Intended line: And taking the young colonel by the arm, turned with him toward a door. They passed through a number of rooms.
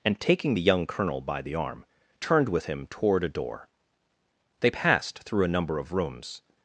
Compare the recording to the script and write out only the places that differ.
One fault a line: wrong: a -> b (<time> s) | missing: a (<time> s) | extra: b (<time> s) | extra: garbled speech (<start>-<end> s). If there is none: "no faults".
no faults